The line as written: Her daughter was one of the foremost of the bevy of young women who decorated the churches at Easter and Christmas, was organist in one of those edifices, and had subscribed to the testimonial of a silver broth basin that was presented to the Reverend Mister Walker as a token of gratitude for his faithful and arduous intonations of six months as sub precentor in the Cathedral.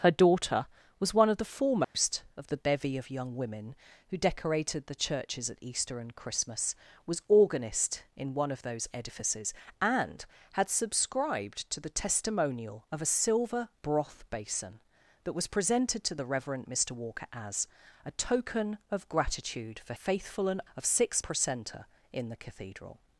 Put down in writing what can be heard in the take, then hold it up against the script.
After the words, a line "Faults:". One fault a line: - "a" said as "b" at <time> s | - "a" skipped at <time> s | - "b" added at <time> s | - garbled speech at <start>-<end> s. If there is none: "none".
Her daughter was one of the foremost of the bevy of young women who decorated the churches at Easter and Christmas, was organist in one of those edifices, and had subscribed to the testimonial of a silver broth basin that was presented to the Reverend Mister Walker as a token of gratitude for faithful and of six precentor in the Cathedral.
Faults:
- "his" skipped at 19.9 s
- "arduous intonations" skipped at 20.6 s
- "months as sub" skipped at 21.2 s